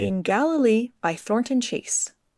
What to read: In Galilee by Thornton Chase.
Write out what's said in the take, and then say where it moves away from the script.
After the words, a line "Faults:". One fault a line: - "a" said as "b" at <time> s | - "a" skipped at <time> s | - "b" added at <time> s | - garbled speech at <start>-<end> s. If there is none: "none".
In Galilee by Thornton Chase.
Faults:
none